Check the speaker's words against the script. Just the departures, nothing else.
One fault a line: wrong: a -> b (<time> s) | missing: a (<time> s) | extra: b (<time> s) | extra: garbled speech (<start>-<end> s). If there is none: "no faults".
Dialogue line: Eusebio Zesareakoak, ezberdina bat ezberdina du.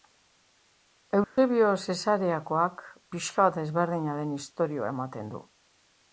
wrong: ezberdina -> pixka (3.2 s)
extra: den istorioa ematen (4.2 s)